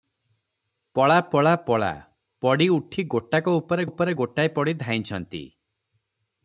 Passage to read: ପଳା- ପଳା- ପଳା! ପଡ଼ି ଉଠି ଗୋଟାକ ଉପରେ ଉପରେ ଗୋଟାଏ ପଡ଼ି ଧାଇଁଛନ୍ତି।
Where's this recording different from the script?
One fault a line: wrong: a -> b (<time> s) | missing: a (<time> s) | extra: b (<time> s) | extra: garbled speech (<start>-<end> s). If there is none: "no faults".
no faults